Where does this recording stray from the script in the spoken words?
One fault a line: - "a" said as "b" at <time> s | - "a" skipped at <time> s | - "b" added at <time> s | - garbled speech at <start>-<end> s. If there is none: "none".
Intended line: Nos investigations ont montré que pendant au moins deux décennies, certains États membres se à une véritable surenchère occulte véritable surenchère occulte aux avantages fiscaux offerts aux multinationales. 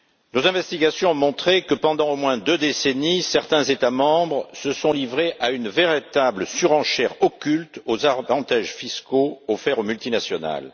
- "sont livrés" added at 4.7 s
- "véritable surenchère occulte" skipped at 7.8 s